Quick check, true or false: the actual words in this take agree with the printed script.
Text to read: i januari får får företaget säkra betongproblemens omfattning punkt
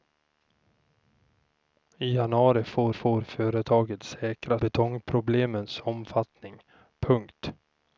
true